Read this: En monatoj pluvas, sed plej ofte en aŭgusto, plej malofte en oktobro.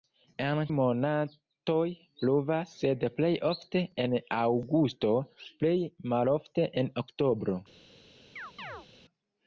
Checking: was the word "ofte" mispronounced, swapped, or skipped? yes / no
no